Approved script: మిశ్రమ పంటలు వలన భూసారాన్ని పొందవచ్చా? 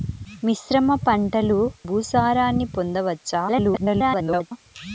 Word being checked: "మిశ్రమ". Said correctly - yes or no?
yes